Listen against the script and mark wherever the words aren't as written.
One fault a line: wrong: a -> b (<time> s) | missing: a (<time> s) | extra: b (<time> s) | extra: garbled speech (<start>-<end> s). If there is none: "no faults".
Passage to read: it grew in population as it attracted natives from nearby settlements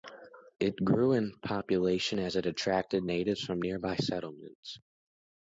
no faults